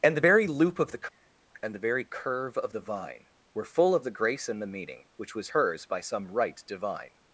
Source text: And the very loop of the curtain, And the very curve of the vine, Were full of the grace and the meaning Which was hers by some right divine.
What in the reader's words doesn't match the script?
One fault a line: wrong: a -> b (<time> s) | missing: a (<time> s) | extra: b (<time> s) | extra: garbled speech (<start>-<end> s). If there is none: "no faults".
missing: curtain (1.0 s)